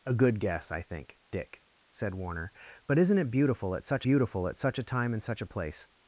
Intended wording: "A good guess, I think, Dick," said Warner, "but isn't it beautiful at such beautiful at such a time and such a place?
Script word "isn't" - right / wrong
right